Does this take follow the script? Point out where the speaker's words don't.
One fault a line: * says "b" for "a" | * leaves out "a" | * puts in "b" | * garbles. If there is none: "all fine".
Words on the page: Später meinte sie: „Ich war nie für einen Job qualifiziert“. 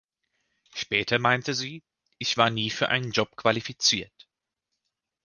all fine